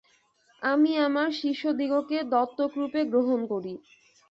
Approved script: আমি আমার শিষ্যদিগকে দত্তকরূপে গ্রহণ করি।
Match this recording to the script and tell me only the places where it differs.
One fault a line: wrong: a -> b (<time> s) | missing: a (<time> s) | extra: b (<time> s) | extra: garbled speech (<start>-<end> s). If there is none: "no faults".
no faults